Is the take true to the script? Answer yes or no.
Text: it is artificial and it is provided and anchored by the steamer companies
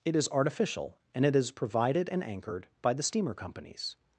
yes